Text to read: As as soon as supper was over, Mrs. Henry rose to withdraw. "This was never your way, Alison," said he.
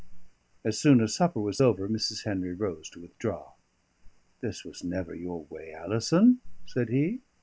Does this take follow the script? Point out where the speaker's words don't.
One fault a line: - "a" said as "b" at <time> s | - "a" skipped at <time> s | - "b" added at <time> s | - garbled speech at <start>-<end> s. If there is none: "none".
- "as" skipped at 0.8 s